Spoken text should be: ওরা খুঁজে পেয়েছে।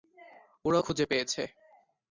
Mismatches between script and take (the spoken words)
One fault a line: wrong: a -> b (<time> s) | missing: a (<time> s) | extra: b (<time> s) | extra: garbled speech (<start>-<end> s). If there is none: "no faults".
no faults